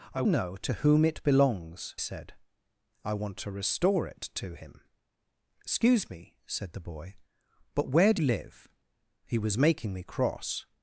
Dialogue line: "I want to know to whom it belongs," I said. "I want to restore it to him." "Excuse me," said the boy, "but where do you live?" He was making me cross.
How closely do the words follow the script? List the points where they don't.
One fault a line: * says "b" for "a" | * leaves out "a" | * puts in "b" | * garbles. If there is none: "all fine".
* leaves out "want to"
* leaves out "I"
* leaves out "you"